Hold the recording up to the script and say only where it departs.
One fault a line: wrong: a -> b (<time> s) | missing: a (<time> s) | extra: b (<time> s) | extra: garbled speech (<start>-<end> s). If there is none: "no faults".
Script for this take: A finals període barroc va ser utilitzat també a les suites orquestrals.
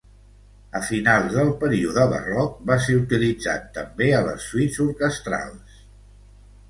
extra: del (1.4 s)